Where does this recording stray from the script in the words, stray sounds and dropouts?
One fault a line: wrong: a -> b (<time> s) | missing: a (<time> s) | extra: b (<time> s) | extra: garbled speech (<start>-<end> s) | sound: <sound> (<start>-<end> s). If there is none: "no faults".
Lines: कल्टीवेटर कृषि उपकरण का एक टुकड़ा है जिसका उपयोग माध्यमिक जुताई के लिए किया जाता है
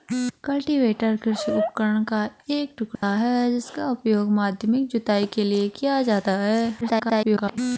sound: dropout (2.9-3.0 s)
extra: garbled speech (6.8-7.6 s)